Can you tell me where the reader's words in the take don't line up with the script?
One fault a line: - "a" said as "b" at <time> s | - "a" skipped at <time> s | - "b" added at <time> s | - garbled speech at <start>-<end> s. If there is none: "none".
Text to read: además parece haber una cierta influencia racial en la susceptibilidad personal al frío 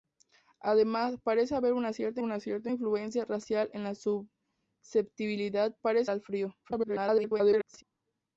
- "una cierta" added at 2.2 s
- "personal" said as "parece" at 5.8 s
- garbled speech at 6.6-7.8 s